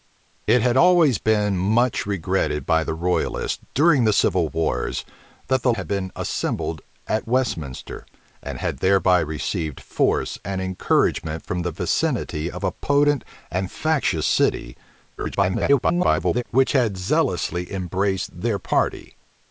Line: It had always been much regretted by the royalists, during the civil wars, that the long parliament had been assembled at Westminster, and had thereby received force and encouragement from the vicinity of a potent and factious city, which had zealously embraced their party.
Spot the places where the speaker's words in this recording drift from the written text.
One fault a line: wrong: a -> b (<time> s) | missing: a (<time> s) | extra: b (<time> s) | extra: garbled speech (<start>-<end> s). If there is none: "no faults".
missing: long parliament (5.7 s)
extra: garbled speech (15.2-16.4 s)